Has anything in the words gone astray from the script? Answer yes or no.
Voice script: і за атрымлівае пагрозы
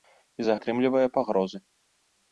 no